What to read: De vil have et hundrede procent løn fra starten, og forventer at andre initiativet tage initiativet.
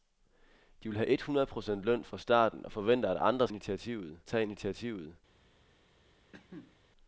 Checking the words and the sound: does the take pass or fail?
fail